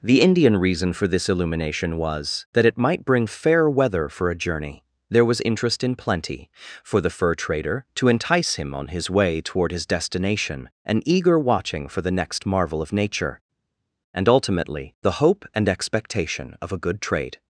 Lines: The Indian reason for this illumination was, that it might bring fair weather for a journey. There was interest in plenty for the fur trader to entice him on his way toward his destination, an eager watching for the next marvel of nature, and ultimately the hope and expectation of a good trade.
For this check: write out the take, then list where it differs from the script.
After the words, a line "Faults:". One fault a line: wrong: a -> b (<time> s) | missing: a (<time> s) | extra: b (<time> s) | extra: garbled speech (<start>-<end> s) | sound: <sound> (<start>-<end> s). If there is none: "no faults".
The Indian reason for this illumination was, that it might bring fair weather for a journey. There was interest in plenty for the fur trader to entice him on his way toward his destination, an eager watching for the next marvel of nature, and ultimately the hope and expectation of a good trade.
Faults:
no faults